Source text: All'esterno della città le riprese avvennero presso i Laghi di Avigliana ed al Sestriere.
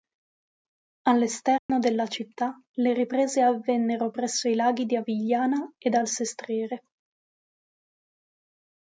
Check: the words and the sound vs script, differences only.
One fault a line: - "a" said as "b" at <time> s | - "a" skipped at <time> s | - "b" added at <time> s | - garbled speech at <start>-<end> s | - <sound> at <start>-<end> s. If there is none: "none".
- dropout at 1.6-1.7 s